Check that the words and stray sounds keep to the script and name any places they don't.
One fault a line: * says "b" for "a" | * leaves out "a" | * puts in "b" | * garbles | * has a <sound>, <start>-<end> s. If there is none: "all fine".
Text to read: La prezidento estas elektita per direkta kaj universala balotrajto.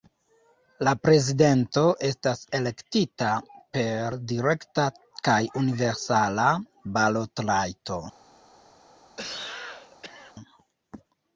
* has a cough, 9.2-10.3 s